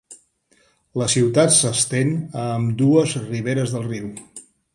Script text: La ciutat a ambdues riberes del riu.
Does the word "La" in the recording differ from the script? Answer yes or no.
no